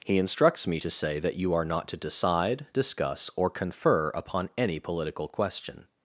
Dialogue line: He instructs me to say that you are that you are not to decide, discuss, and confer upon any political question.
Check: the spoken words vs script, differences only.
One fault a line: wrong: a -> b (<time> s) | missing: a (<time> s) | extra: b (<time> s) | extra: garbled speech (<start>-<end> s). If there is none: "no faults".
missing: that you are (1.6 s)
wrong: and -> or (3.3 s)